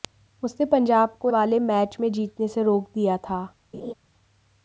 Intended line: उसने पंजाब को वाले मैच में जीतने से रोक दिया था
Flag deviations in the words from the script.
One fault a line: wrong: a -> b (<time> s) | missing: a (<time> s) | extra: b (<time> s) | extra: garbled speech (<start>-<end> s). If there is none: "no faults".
no faults